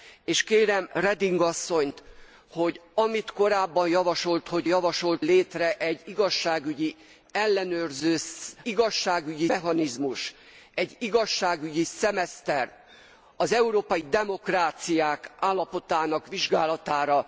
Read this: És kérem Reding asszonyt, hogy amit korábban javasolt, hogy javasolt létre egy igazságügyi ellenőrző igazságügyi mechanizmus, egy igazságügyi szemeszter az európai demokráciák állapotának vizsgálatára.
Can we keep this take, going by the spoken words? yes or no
yes